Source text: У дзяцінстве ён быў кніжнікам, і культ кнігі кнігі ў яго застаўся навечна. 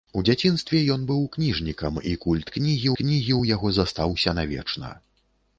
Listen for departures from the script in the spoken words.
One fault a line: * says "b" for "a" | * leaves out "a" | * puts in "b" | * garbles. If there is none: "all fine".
all fine